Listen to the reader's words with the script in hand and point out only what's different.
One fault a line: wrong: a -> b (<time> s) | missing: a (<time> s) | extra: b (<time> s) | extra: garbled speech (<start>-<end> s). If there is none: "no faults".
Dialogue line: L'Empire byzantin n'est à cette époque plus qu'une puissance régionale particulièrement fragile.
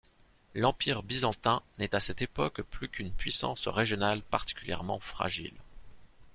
no faults